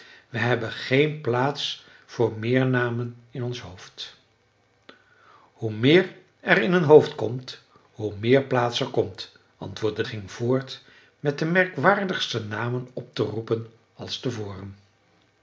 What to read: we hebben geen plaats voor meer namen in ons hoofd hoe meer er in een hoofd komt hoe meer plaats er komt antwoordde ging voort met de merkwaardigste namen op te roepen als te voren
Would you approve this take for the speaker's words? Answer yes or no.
yes